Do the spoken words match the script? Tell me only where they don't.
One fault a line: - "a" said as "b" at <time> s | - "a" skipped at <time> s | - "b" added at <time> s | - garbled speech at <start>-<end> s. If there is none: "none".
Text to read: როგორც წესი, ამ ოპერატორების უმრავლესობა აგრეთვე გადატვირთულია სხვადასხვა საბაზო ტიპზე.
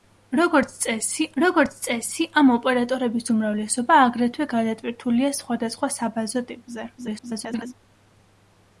- "როგორც წესი" added at 1.4 s
- garbled speech at 7.0-7.7 s